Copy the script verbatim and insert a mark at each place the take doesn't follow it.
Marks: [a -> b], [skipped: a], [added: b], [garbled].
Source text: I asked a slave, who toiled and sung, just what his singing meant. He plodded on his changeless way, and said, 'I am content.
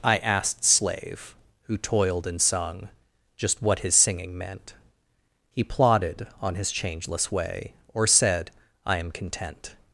I asked [skipped: a] slave, who toiled and sung, just what his singing meant. He plodded on his changeless way, [and -> or] said, 'I am content.